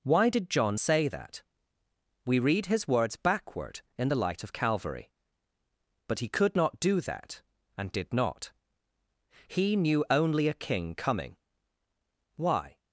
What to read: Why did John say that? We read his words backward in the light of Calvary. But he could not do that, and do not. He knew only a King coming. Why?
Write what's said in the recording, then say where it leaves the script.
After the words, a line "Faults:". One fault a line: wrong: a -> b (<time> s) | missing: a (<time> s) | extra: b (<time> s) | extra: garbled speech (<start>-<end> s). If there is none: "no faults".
Why did John say that? We read his words backward in the light of Calvary. But he could not do that, and did not. He knew only a King coming. Why?
Faults:
wrong: do -> did (7.9 s)